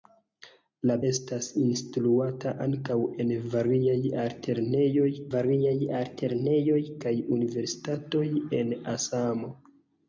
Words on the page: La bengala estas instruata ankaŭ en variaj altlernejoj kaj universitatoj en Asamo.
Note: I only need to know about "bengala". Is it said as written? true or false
false